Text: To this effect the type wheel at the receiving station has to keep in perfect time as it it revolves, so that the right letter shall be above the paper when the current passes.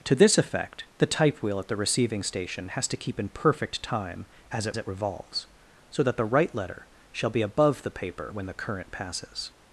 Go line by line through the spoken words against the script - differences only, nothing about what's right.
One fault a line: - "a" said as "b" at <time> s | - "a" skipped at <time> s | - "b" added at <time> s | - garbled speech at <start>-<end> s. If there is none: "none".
none